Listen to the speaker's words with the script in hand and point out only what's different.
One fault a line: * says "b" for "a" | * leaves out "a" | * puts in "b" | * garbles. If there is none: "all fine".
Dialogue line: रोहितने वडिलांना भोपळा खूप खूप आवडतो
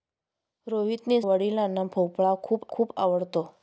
all fine